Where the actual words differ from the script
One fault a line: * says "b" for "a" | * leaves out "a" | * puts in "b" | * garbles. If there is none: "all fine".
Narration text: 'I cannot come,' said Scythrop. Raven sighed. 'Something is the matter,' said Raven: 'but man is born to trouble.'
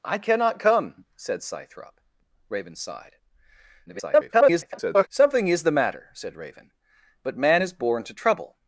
* garbles